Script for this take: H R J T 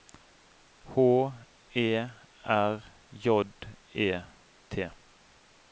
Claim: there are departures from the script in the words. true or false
true